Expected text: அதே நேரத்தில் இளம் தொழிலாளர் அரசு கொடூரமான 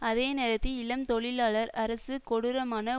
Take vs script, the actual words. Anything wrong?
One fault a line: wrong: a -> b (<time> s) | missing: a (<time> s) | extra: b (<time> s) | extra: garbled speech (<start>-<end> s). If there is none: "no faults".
no faults